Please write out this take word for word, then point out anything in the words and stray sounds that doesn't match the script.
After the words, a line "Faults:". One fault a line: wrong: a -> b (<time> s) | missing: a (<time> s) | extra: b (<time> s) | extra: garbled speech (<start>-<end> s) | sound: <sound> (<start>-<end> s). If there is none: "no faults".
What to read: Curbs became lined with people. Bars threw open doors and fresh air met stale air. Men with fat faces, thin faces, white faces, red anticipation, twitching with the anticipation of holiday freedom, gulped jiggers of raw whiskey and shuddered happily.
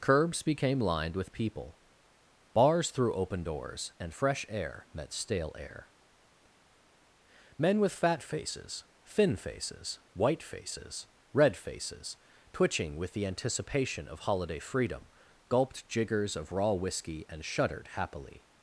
Curbs became lined with people. Bars threw open doors and fresh air met stale air. Men with fat faces, thin faces, white faces, red faces, twitching with the anticipation of holiday freedom, gulped jiggers of raw whiskey and shuddered happily.
Faults:
wrong: anticipation -> faces (11.6 s)